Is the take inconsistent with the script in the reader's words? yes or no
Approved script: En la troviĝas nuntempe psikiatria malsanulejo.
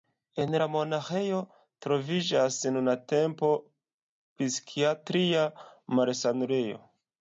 yes